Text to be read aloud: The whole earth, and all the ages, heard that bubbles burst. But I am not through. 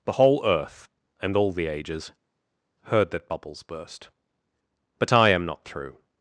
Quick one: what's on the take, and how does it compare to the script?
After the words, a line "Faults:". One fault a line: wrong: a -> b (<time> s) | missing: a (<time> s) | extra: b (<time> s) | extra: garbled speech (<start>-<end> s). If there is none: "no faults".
The whole earth, and all the ages, heard that bubbles burst. But I am not through.
Faults:
no faults